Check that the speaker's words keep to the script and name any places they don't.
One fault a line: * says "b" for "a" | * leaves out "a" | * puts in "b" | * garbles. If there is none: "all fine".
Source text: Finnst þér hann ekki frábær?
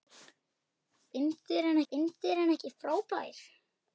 * puts in "finnst þér hann"